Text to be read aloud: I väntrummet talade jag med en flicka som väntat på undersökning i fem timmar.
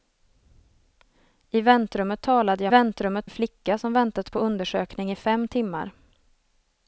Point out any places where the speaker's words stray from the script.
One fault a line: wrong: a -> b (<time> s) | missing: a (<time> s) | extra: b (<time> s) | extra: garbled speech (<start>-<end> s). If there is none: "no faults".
wrong: med -> väntrummet (2.7 s)